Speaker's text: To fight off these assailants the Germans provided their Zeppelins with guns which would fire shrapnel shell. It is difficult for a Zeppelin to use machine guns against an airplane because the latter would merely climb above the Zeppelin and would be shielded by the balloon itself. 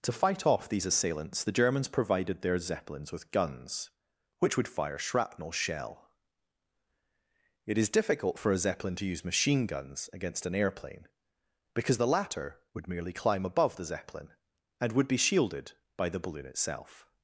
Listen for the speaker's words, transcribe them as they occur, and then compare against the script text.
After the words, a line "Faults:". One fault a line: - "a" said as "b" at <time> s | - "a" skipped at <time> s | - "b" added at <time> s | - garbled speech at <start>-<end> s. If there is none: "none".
To fight off these assailants the Germans provided their Zeppelins with guns which would fire shrapnel shell. It is difficult for a Zeppelin to use machine guns against an airplane because the latter would merely climb above the Zeppelin and would be shielded by the balloon itself.
Faults:
none